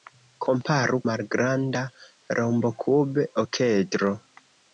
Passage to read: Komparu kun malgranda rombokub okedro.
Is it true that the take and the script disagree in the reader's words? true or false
true